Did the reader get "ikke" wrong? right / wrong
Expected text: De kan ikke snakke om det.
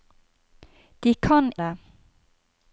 wrong